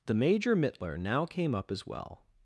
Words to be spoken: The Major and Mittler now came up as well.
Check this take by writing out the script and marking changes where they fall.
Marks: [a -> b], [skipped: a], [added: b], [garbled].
The Major [skipped: and] Mittler now came up as well.